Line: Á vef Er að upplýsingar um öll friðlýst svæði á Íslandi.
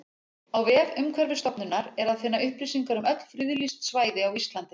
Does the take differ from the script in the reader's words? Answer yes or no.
yes